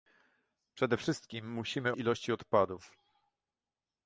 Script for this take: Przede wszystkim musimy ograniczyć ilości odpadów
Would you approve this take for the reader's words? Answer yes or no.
no